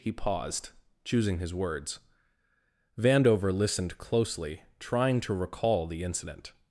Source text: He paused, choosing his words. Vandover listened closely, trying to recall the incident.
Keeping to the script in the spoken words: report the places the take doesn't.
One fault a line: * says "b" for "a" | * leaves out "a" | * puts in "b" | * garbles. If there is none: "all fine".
all fine